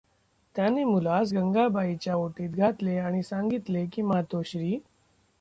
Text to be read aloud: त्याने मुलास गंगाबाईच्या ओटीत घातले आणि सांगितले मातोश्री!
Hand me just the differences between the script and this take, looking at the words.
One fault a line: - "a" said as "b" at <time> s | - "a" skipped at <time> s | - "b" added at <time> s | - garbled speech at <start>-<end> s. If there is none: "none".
- "की" added at 3.9 s